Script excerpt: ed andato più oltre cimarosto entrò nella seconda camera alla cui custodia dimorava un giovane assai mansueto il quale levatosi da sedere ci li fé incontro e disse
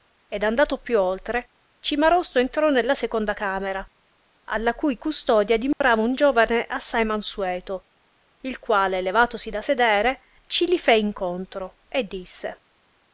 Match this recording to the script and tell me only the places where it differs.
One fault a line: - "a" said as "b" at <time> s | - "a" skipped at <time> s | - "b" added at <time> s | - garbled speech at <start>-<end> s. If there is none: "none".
none